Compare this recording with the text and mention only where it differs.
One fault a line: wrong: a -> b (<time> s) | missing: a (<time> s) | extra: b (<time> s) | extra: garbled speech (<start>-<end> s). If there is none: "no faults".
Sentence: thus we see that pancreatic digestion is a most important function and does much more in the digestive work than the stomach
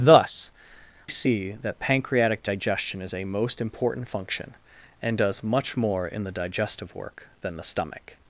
missing: we (0.5 s)